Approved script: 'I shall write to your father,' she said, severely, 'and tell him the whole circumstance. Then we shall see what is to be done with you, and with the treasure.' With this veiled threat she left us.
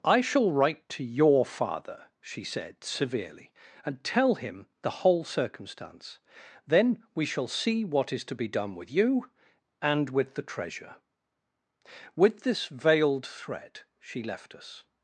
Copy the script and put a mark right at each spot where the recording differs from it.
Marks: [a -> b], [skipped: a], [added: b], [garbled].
'I shall write to your father,' she said, severely, 'and tell him the whole circumstance. Then we shall see what is to be done with you, and with the treasure.' With this veiled threat she left us.